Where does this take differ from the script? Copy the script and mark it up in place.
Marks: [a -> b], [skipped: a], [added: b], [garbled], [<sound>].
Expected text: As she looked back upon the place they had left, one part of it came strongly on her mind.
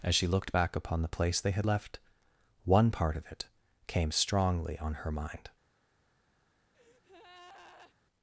As she looked back upon the place they had left, one part of it came strongly on her mind. [breath]